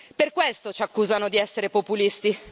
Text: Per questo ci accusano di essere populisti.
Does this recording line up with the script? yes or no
yes